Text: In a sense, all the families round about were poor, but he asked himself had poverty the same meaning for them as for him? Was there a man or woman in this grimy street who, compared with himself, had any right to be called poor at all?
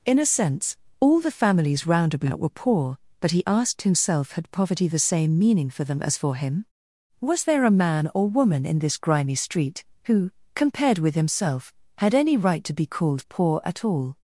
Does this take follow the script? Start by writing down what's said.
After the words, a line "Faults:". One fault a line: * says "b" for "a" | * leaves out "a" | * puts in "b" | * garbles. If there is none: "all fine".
In a sense, all the families round about were poor, but he asked himself had poverty the same meaning for them as for him? Was there a man or woman in this grimy street who, compared with himself, had any right to be called poor at all?
Faults:
all fine